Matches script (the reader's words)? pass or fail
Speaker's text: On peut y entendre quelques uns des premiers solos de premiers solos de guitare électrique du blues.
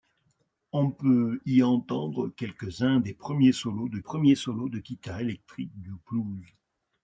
pass